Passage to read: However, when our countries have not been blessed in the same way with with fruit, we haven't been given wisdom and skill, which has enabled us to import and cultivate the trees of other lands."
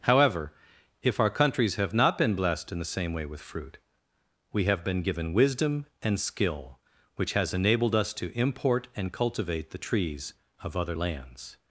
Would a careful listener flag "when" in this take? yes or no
yes